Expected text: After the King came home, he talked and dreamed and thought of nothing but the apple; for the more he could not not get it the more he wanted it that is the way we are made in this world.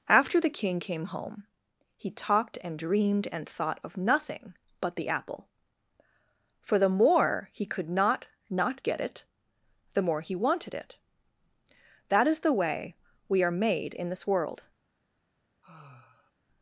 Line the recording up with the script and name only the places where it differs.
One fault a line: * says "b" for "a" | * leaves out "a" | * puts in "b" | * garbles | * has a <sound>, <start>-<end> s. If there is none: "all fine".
* has a sigh, 15.6-16.3 s